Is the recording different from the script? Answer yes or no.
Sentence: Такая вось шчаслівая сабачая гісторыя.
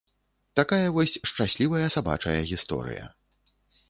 no